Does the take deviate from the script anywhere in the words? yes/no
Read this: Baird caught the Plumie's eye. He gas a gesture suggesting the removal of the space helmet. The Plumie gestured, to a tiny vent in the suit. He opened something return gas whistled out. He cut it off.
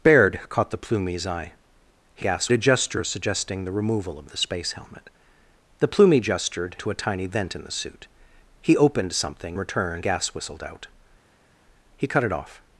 no